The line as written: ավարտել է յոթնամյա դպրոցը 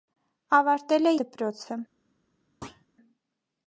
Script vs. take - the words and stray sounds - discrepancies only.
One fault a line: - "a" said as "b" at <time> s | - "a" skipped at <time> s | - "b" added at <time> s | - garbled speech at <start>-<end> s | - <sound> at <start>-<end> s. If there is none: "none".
- "յոթնամյա" skipped at 1.1 s
- thud at 2.6-2.9 s